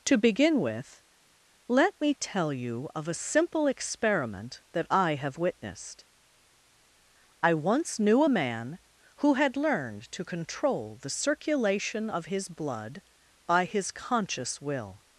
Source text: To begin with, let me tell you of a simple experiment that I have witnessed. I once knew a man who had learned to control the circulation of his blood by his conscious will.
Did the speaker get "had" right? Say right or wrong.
right